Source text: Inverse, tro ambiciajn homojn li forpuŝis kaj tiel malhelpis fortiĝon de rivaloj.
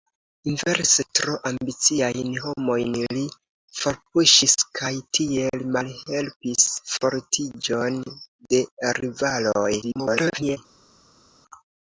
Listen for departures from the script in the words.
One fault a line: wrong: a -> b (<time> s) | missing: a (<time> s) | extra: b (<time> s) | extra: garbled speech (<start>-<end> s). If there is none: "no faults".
extra: garbled speech (9.8-10.6 s)